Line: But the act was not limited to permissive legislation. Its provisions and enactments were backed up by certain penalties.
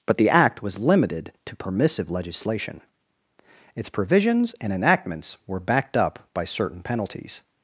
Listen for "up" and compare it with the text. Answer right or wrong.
right